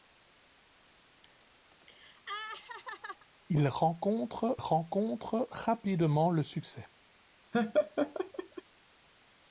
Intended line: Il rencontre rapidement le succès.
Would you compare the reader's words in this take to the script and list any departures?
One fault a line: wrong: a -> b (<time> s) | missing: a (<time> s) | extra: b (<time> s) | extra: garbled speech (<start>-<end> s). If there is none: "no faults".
extra: rencontre (4.5 s)